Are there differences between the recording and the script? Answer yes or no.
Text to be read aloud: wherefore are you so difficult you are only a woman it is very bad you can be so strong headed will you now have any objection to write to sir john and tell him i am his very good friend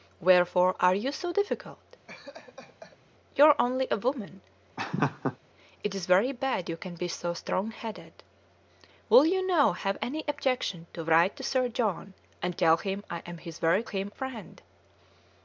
yes